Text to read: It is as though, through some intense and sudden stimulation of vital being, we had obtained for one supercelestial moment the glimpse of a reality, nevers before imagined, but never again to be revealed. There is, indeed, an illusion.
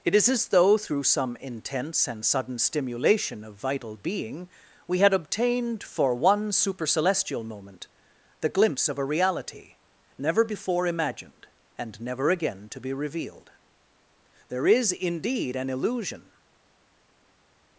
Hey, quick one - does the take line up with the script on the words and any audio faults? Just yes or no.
no